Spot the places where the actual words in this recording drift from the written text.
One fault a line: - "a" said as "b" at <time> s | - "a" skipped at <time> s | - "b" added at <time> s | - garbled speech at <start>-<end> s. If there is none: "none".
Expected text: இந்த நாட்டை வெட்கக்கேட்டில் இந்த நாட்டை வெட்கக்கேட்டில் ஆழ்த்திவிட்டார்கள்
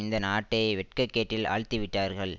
- "இந்த நாட்டை வெட்கக்கேட்டில்" skipped at 1.5 s